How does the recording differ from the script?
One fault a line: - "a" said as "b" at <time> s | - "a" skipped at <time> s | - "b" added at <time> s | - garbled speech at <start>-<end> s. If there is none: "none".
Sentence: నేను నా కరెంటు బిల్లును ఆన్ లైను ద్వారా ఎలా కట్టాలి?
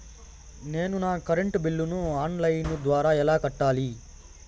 none